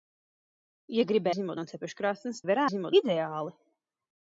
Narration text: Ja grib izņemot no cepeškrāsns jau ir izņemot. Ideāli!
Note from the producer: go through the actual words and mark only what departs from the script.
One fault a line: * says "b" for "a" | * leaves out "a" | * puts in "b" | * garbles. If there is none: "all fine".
all fine